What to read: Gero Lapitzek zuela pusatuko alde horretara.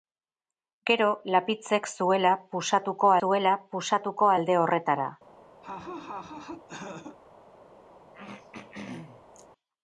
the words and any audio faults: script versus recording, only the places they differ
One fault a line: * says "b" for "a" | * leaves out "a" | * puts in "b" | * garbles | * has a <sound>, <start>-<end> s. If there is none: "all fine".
* puts in "zuela pusatuko"
* has a laugh, 5.6-7.2 s
* has a throat clearing, 8.1-9.5 s